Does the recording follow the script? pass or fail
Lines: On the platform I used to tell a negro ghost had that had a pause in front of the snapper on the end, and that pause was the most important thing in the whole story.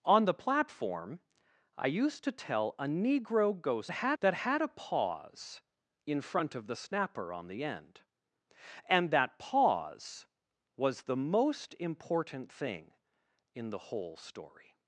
pass